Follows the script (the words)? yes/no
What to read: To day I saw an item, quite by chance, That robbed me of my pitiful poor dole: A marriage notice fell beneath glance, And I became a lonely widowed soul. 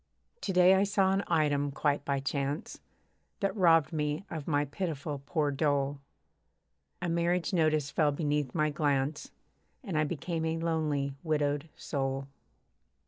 no